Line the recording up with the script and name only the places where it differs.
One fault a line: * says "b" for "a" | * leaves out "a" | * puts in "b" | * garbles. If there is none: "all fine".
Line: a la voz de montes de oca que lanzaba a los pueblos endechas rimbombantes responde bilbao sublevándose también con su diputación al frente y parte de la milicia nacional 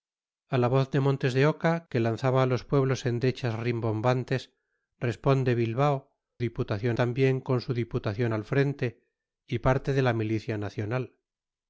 * says "diputación" for "sublevándose"